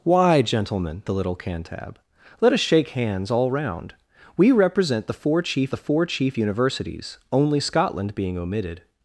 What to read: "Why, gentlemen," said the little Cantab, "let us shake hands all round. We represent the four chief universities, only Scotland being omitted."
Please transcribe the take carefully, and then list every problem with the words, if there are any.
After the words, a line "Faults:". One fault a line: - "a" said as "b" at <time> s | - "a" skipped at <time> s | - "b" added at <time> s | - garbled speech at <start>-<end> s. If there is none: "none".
"Why, gentlemen," the little Cantab, "let us shake hands all round. We represent the four chief the four chief universities, only Scotland being omitted."
Faults:
- "said" skipped at 1.0 s
- "the four chief" added at 5.7 s